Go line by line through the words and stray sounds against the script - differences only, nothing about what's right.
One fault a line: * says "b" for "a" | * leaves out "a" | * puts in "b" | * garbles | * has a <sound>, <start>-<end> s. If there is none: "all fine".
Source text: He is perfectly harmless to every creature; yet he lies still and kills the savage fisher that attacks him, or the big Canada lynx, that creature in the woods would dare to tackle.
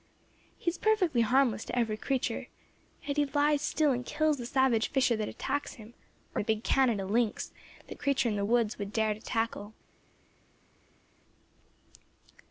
all fine